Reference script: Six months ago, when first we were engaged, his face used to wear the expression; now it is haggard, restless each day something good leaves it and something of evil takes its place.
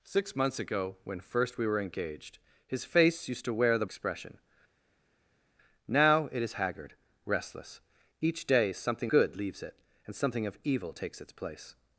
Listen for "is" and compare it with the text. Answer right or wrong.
right